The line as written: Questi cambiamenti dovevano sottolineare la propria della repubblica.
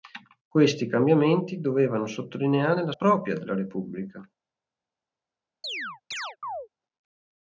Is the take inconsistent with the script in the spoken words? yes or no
no